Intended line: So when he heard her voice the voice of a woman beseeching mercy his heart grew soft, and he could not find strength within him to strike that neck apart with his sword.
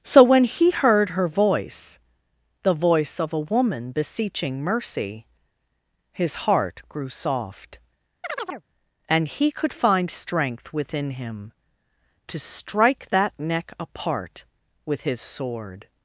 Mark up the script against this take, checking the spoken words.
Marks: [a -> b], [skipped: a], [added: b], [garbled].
So when he heard her voice the voice of a woman beseeching mercy his heart grew soft, and he could [skipped: not] find strength within him to strike that neck apart with his sword.